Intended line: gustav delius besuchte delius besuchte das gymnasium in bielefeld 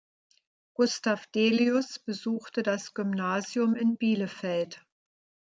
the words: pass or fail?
fail